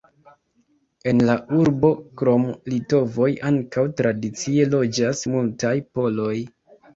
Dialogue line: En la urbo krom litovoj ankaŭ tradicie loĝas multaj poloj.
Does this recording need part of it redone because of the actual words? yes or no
no